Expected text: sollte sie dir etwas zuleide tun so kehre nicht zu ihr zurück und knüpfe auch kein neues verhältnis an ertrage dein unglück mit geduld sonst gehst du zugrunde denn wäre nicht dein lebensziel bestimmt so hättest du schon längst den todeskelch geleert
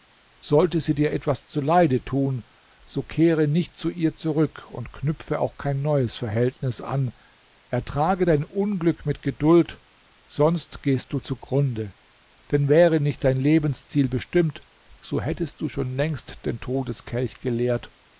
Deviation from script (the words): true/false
false